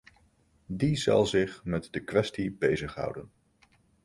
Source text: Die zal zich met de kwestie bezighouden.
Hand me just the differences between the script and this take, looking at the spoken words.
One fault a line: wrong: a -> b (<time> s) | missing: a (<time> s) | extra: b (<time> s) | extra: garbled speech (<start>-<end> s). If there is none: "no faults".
no faults